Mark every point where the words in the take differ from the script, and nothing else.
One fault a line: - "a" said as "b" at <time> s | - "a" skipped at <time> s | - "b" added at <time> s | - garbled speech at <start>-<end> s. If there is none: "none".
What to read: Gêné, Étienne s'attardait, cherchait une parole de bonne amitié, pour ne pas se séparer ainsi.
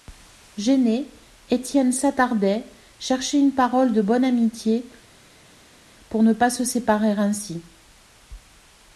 none